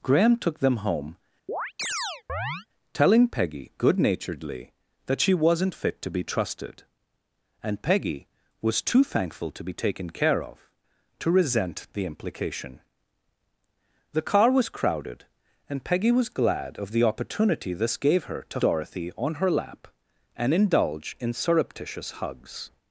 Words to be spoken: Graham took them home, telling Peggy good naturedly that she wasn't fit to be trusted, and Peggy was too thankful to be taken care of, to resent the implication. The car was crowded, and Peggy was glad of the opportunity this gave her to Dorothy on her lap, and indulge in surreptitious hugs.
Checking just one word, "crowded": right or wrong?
right